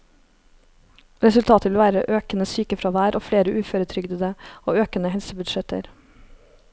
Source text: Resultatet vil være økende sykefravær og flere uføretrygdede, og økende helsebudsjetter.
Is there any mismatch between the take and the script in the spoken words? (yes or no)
no